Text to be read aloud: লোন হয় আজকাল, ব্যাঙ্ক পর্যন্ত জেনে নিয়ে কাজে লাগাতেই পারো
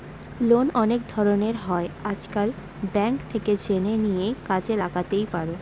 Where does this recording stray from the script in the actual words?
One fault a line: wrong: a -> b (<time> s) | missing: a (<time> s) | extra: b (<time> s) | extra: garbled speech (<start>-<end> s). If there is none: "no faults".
extra: অনেক ধরনের (0.8 s)
wrong: পর্যন্ত -> থেকে (3.3 s)